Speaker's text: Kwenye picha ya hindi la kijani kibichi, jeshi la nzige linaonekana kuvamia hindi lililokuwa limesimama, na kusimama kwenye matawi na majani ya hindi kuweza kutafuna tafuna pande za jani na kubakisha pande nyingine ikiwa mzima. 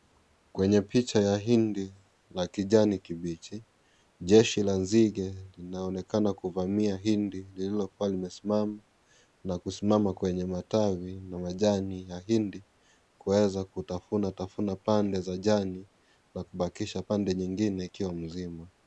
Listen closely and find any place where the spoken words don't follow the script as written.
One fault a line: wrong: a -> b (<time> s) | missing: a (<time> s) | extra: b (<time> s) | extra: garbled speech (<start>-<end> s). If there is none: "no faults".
no faults